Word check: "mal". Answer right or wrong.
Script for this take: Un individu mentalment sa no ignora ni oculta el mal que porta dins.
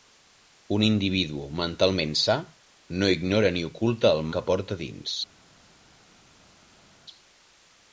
wrong